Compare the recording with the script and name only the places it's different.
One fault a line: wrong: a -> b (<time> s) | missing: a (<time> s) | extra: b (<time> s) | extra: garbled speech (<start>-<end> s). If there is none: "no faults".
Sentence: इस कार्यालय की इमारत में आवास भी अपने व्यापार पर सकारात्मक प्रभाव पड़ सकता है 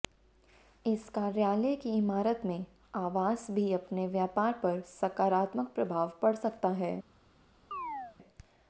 no faults